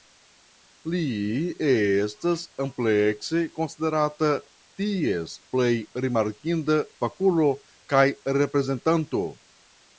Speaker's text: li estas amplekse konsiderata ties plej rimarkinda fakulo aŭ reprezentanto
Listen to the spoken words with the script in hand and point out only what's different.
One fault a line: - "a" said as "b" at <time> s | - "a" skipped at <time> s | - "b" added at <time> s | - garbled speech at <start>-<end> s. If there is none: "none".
- "aŭ" said as "kaj" at 8.0 s